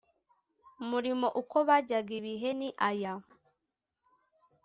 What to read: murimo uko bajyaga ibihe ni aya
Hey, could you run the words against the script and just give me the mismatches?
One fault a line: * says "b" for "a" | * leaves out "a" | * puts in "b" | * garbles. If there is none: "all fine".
all fine